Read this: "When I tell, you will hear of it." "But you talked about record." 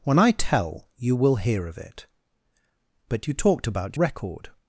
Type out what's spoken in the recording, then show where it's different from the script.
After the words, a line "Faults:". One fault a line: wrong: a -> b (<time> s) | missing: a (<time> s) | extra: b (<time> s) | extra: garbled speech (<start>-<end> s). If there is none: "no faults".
"When I tell, you will hear of it." "But you talked about record."
Faults:
no faults